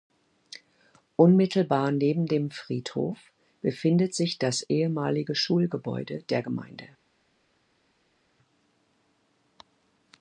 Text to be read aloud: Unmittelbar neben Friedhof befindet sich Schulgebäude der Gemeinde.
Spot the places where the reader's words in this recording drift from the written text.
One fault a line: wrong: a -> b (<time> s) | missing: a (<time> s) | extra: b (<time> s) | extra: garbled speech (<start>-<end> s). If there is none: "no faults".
extra: dem (2.2 s)
extra: das ehemalige (4.4 s)